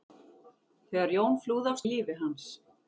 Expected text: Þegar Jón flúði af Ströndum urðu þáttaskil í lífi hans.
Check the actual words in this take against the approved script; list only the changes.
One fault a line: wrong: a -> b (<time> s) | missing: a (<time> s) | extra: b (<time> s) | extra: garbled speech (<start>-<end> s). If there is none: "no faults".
missing: Ströndum urðu þáttaskil (1.8 s)